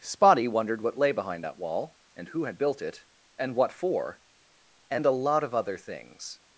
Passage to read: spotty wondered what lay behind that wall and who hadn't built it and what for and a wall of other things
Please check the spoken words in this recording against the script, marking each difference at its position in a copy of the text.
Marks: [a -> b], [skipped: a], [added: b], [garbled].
spotty wondered what lay behind that wall and who [hadn't -> had] built it and what for and a [wall -> lot] of other things